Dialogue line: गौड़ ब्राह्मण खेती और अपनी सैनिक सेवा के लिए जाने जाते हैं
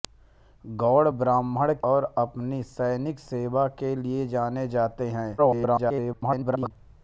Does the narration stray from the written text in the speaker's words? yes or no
yes